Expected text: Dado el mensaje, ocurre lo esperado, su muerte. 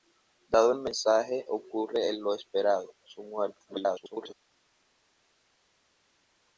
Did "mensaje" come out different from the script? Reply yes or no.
no